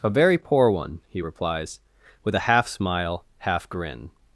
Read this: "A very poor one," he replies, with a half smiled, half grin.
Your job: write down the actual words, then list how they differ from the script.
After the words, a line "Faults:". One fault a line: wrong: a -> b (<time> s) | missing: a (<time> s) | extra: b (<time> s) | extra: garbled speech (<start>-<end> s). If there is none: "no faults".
"A very poor one," he replies, with a half smile, half grin.
Faults:
wrong: smiled -> smile (2.7 s)